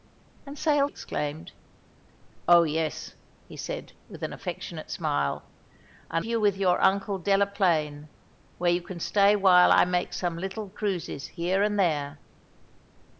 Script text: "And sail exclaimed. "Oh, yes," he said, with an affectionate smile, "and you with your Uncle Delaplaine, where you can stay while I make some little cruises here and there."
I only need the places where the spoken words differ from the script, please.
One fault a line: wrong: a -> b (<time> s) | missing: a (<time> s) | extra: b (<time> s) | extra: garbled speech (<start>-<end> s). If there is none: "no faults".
no faults